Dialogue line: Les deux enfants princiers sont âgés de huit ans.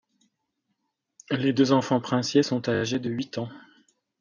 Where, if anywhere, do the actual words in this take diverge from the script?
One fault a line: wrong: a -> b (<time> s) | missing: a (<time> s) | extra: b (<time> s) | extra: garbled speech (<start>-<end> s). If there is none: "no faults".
no faults